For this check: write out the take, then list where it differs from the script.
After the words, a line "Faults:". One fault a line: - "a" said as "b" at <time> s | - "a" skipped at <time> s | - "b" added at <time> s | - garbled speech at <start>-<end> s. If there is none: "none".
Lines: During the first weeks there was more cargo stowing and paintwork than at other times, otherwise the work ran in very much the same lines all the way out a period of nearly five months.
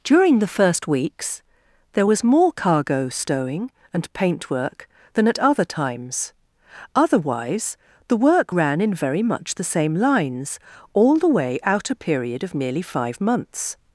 During the first weeks there was more cargo stowing and paintwork than at other times, otherwise the work ran in very much the same lines all the way out a period of merely five months.
Faults:
- "nearly" said as "merely" at 12.5 s